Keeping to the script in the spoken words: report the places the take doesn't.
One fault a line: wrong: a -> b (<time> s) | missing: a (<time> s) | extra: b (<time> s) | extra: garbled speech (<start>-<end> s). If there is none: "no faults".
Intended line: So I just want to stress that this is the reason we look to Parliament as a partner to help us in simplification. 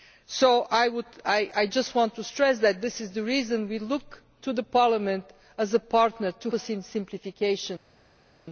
missing: help (6.5 s)